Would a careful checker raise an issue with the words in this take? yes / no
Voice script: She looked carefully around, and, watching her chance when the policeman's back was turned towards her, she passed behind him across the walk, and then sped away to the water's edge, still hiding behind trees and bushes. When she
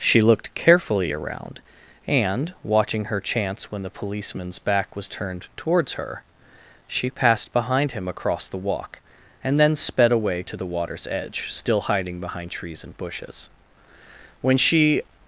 no